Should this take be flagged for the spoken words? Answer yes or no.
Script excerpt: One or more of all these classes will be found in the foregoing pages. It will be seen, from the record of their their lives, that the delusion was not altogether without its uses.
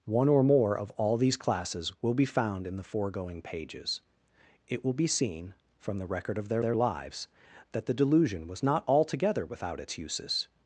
no